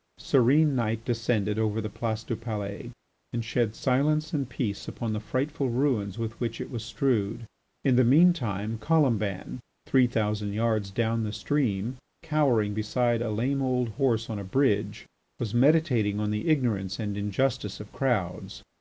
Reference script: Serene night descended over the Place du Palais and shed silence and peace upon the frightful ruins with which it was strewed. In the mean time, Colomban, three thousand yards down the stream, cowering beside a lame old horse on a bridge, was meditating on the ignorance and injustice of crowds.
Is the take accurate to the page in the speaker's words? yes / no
yes